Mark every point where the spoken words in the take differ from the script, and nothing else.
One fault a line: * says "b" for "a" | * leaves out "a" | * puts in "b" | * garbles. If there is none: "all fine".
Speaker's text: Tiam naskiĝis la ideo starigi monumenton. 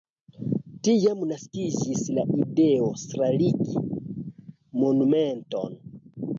all fine